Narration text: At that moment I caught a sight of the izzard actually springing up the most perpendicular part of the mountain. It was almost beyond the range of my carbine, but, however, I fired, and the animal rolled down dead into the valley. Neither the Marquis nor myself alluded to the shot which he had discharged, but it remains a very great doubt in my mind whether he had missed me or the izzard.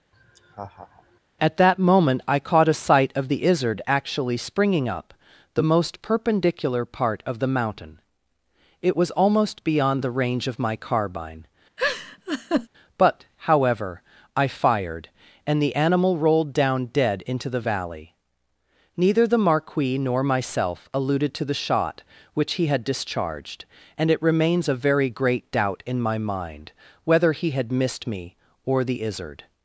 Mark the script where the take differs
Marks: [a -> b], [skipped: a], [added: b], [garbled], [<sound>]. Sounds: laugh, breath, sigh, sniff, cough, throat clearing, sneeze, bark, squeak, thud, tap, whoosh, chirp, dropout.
[laugh] At that moment I caught a sight of the izzard actually springing up the most perpendicular part of the mountain. It was almost beyond the range of my carbine, [laugh] but, however, I fired, and the animal rolled down dead into the valley. Neither the Marquis nor myself alluded to the shot which he had discharged, [but -> and] it remains a very great doubt in my mind whether he had missed me or the izzard.